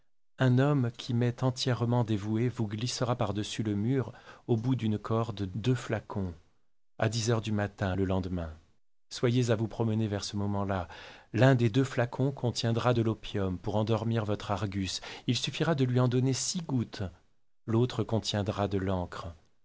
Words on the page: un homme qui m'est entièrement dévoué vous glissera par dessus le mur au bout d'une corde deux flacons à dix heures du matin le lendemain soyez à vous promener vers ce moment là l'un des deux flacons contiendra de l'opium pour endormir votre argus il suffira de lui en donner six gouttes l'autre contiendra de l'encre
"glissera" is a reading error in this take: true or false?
false